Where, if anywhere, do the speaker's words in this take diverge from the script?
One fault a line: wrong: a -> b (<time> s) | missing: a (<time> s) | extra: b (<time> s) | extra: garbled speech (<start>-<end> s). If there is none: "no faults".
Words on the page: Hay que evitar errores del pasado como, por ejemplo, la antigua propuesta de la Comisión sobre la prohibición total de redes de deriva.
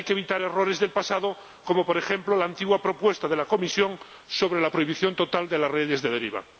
extra: las (5.6 s)